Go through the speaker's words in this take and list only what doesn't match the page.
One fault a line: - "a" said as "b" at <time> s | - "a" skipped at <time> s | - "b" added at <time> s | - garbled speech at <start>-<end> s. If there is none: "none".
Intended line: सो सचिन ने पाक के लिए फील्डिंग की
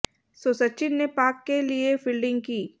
none